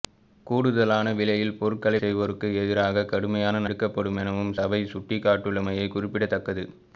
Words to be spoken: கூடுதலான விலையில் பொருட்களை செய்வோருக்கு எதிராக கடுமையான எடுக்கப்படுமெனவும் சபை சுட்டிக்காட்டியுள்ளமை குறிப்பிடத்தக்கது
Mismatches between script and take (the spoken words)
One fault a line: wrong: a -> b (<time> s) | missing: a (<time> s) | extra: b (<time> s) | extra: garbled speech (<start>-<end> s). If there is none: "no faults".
no faults